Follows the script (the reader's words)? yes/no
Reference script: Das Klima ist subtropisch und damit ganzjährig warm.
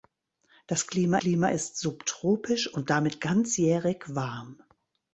no